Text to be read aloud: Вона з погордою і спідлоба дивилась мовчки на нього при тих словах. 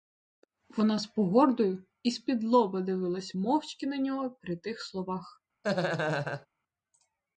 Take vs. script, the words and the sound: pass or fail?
fail